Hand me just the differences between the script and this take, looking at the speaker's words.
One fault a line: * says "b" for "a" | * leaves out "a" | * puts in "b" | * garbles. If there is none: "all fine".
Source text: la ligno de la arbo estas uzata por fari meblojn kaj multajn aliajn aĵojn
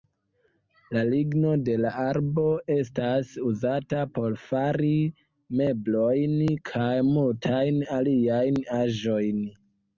all fine